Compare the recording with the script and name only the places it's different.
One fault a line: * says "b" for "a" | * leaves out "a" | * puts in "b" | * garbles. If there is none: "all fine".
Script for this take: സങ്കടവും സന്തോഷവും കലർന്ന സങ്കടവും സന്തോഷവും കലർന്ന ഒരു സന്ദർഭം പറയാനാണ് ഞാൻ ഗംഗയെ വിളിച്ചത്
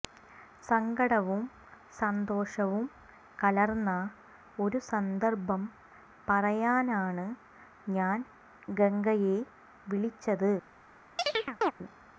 * leaves out "സങ്കടവും സന്തോഷവും കലർന്ന"